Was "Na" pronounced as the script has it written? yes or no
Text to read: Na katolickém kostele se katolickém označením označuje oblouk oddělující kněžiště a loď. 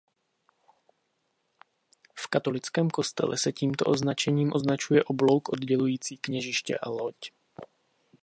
no